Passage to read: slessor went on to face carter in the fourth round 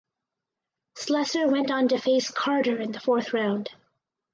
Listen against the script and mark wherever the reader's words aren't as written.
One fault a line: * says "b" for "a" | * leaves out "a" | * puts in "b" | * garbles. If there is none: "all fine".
all fine